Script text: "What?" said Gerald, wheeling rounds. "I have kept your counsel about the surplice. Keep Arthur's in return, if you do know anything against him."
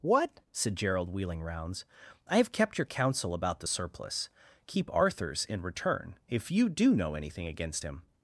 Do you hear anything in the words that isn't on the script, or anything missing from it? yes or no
no